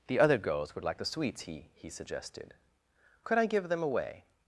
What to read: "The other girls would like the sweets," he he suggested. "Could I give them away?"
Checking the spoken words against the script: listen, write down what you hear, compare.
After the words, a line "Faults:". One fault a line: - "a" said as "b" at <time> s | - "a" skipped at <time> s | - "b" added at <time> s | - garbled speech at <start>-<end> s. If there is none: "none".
"The other girls would like the sweets," he he suggested. "Could I give them away?"
Faults:
none